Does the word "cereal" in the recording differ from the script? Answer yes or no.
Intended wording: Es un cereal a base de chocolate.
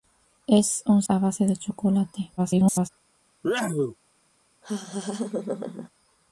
yes